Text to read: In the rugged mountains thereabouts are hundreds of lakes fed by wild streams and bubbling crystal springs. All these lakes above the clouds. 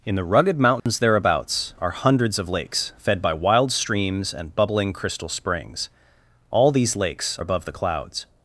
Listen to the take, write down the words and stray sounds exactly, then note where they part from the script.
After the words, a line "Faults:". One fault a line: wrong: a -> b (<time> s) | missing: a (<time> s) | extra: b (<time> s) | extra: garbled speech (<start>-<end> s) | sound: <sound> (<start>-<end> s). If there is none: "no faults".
In the rugged mountains thereabouts are hundreds of lakes fed by wild streams and bubbling crystal springs. All these lakes above the clouds.
Faults:
sound: dropout (0.8-0.9 s)